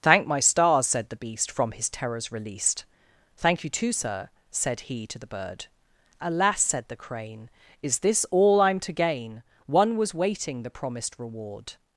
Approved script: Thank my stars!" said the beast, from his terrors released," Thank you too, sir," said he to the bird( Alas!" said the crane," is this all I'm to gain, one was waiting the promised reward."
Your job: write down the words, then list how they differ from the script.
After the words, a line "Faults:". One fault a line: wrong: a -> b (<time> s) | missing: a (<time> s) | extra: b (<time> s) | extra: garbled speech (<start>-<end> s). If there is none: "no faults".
Thank my stars!" said the beast, from his terrors released," Thank you too, sir," said he to the bird( Alas!" said the crane," is this all I'm to gain, one was waiting the promised reward."
Faults:
no faults